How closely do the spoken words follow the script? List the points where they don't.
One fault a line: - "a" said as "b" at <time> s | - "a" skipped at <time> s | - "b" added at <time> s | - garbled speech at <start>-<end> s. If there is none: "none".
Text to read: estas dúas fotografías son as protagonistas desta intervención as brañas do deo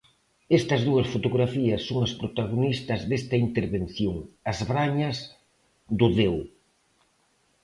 none